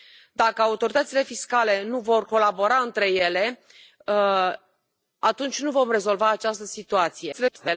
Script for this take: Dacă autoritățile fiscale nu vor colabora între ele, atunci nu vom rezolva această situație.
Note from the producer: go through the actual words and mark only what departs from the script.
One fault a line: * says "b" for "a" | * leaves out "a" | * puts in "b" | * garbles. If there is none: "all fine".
* garbles